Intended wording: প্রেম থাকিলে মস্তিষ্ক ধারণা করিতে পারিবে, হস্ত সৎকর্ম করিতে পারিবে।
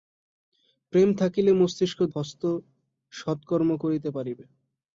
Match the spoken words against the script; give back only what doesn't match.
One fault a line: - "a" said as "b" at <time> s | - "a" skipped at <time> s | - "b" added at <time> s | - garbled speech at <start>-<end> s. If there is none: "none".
- "ধারণা করিতে পারিবে" skipped at 2.0 s